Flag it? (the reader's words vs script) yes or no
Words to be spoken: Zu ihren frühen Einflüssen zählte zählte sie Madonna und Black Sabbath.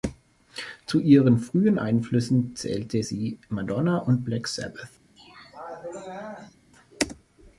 yes